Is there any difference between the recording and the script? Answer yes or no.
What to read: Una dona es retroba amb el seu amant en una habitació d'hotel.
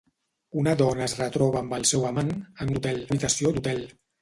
yes